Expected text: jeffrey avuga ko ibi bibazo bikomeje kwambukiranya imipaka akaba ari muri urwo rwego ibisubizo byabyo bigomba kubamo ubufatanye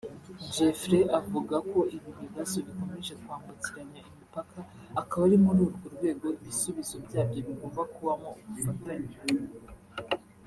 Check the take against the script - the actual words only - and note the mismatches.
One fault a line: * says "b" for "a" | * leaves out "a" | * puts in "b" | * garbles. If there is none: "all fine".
all fine